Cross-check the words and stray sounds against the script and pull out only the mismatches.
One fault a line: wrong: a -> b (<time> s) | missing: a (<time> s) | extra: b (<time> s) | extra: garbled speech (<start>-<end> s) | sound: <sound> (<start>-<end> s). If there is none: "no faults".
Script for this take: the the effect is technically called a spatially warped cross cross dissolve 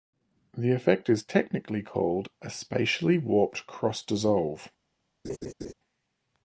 missing: the (0.7 s)
missing: cross (4.0 s)
sound: laugh (5.2-5.7 s)